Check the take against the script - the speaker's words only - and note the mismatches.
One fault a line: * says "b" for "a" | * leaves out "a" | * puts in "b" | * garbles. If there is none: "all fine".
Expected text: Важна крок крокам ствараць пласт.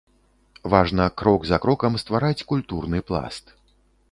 * puts in "за"
* puts in "культурны"